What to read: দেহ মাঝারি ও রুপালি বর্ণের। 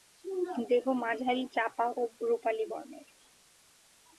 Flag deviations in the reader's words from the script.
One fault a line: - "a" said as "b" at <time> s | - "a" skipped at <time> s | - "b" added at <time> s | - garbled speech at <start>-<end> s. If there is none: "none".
- "চাপা" added at 1.6 s